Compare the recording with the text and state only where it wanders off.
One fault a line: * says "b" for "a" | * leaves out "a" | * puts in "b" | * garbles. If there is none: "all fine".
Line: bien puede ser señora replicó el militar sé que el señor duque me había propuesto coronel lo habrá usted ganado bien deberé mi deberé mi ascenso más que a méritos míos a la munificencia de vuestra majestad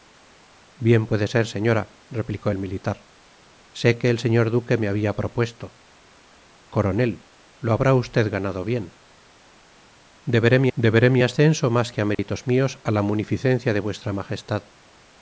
all fine